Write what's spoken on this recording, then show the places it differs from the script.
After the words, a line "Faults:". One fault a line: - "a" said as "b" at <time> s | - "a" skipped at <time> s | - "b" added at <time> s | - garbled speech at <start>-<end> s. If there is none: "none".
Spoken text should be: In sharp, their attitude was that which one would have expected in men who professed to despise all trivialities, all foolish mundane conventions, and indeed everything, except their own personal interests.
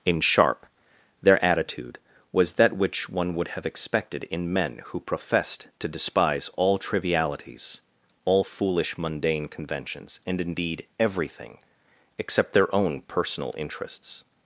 In sharp, their attitude was that which one would have expected in men who professed to despise all trivialities, all foolish mundane conventions, and indeed everything, except their own personal interests.
Faults:
none